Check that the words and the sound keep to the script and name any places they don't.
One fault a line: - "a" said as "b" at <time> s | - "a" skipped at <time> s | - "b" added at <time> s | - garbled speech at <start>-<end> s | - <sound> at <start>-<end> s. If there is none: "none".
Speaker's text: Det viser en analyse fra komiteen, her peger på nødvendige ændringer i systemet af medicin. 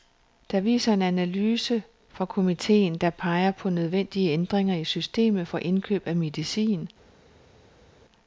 - "her" said as "der" at 3.0 s
- "for indkøb" added at 5.4 s